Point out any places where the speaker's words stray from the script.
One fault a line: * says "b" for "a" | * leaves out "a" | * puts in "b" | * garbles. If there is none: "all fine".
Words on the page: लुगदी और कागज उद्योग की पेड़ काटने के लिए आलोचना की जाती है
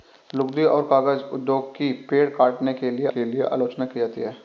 * puts in "के लिए"